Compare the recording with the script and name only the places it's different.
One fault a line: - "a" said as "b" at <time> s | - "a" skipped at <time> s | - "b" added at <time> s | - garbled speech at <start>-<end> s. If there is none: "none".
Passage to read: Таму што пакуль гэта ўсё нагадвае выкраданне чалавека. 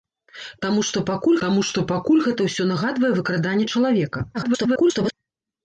- "таму што пакуль" added at 1.4 s
- garbled speech at 4.3-5.1 s